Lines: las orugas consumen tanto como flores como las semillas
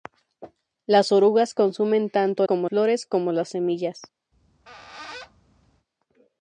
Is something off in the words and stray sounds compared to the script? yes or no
yes